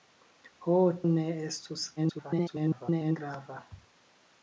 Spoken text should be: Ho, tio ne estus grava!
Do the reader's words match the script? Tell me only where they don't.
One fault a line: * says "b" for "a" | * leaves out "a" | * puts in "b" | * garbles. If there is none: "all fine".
* leaves out "tio"
* garbles